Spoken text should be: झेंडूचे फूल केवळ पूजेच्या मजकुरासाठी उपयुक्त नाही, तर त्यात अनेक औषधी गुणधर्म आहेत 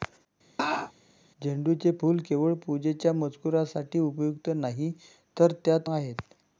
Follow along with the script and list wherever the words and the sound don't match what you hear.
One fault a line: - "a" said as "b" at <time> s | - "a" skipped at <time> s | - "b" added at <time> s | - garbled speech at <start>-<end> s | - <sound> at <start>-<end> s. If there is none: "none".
- laugh at 0.6-0.9 s
- "अनेक औषधी गुणधर्म" skipped at 5.9 s